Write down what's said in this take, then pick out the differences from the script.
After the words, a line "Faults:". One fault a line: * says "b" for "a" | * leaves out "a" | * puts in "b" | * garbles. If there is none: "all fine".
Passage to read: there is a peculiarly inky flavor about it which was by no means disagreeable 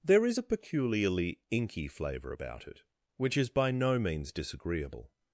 there is a peculiarly inky flavor about it which is by no means disagreeable
Faults:
* says "is" for "was"